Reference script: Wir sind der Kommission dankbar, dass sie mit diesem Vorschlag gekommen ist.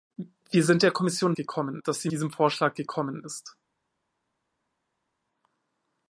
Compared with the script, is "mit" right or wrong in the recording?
wrong